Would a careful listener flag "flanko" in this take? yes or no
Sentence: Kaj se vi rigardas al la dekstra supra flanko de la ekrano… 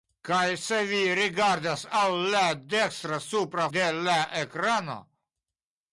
yes